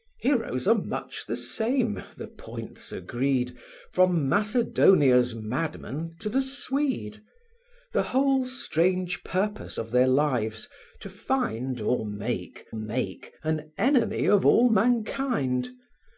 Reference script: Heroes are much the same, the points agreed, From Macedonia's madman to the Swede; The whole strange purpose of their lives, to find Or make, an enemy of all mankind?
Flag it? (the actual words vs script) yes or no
yes